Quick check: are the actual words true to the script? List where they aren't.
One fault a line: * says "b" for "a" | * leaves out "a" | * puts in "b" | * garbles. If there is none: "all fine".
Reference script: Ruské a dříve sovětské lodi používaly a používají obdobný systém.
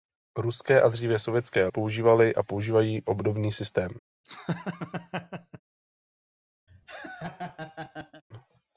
* leaves out "lodi"